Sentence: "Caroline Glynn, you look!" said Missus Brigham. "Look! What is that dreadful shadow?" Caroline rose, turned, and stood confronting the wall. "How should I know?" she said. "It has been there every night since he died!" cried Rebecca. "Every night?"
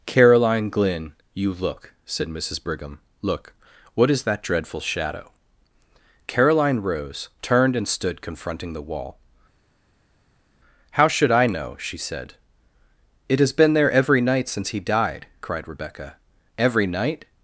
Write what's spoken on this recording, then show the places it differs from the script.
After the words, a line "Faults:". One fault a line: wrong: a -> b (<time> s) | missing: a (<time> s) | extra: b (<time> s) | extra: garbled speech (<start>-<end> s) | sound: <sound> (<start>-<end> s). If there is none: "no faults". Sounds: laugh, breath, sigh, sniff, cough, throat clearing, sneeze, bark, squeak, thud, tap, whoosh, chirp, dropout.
"Caroline Glynn, you look!" said Missus Brigham. "Look! What is that dreadful shadow?" Caroline rose, turned, and stood confronting the wall. "How should I know?" she said. "It has been there every night since he died!" cried Rebecca. "Every night?"
Faults:
no faults